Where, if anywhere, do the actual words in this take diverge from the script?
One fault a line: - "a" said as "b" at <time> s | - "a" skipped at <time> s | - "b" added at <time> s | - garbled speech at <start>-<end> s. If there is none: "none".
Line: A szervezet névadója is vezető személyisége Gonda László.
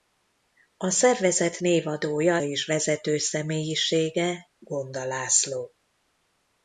none